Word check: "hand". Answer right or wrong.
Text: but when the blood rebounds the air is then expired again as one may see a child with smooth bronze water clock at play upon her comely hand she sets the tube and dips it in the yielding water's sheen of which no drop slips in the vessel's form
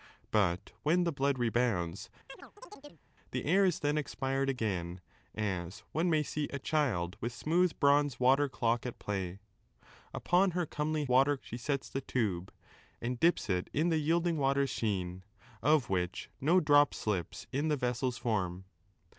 wrong